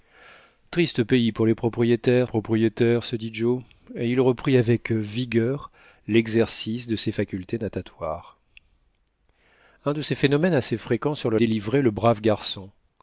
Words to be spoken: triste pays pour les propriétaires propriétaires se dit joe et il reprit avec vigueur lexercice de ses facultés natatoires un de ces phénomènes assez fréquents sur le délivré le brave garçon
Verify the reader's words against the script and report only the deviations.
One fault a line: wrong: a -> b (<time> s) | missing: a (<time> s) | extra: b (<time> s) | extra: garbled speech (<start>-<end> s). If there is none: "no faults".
no faults